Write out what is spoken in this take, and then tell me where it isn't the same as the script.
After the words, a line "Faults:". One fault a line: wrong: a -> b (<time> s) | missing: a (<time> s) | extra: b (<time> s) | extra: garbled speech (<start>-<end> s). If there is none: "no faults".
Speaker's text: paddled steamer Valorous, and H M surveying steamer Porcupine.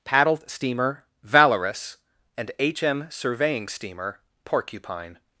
paddled steamer Valorous, and H M surveying steamer Porcupine.
Faults:
no faults